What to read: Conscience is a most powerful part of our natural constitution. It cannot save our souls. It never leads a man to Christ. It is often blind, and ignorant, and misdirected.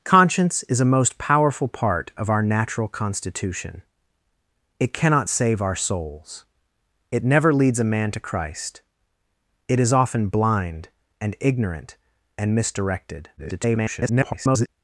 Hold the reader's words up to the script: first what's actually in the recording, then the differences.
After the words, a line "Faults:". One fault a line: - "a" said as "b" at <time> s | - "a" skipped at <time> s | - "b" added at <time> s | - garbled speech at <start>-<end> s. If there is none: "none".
Conscience is a most powerful part of our natural constitution. It cannot save our souls. It never leads a man to Christ. It is often blind, and ignorant, and misdirected. [garbled]
Faults:
- garbled speech at 13.4-14.7 s